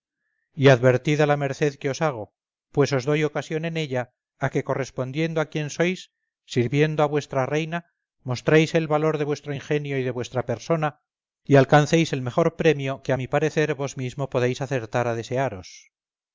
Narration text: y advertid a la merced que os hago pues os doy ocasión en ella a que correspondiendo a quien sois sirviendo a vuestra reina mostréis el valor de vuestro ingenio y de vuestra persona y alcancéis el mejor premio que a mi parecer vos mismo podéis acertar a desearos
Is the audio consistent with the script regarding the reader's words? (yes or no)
yes